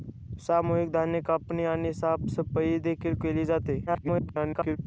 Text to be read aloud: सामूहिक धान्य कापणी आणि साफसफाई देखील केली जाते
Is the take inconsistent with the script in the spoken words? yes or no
yes